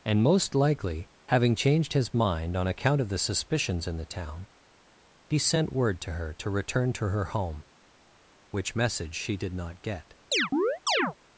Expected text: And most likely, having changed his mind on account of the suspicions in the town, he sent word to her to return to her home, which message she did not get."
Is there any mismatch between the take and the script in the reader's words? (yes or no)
no